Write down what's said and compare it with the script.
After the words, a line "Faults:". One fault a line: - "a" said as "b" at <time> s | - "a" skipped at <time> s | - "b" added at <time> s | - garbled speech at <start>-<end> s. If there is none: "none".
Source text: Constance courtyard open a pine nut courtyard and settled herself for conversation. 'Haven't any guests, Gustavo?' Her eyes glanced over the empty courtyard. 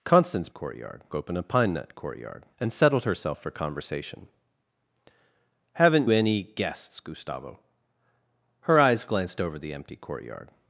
Constance courtyard open a pine nut courtyard and settled herself for conversation. 'Haven't any guests, Gustavo?' Her eyes glanced over the empty courtyard.
Faults:
none